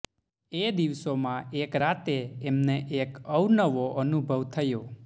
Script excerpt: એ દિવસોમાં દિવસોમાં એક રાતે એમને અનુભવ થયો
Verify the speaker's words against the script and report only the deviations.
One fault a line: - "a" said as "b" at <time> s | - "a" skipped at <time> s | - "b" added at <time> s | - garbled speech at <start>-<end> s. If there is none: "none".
- "દિવસોમાં" skipped at 1.5 s
- "એક અવનવો" added at 3.0 s